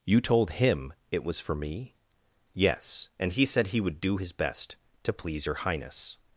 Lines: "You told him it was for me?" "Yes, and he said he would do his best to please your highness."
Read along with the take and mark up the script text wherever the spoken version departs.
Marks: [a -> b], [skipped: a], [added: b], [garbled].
"You told him it was for me?" "Yes, and he said he would do his best to please your highness."